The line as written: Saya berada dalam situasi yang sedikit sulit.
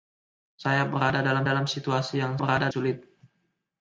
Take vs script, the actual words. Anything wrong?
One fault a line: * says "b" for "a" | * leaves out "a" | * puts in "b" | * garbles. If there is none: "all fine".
* puts in "dalam"
* says "berada" for "sedikit"